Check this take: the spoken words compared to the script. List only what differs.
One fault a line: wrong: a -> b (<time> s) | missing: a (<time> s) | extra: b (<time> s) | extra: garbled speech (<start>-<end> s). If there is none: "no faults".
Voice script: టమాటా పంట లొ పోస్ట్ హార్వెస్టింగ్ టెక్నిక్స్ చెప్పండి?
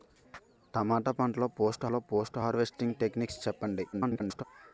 extra: లొ పోస్ట్ (1.9 s)
extra: garbled speech (3.9-4.4 s)